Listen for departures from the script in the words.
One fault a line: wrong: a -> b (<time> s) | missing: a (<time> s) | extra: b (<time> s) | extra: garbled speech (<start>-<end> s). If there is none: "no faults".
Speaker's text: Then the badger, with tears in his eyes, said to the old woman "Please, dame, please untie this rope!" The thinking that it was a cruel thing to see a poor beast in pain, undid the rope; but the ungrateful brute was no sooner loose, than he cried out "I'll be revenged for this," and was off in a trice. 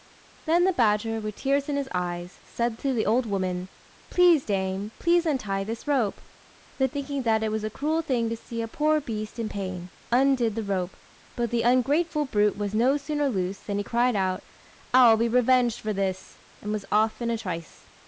no faults